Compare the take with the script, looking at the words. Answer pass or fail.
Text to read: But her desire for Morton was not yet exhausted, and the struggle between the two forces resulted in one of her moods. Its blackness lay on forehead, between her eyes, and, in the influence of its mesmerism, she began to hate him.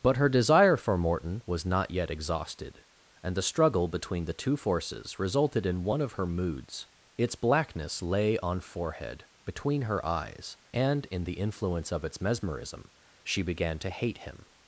pass